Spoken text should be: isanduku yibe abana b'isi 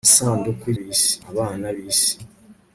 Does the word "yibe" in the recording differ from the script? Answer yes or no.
yes